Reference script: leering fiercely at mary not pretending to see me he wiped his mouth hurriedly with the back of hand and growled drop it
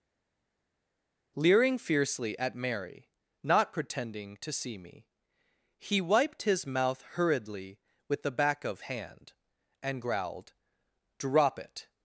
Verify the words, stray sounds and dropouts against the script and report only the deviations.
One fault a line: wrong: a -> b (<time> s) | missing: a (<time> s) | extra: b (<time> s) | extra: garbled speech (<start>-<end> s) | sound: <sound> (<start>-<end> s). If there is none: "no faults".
no faults